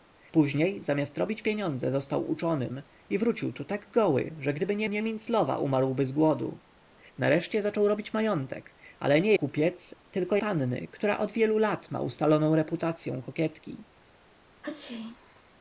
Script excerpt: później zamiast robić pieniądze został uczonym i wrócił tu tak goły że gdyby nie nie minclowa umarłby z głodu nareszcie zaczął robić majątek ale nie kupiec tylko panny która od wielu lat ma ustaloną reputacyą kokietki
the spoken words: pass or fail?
pass